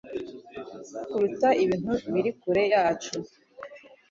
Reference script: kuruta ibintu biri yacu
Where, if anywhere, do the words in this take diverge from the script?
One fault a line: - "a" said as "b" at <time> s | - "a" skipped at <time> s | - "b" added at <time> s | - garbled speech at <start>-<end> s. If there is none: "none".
- "kure" added at 2.4 s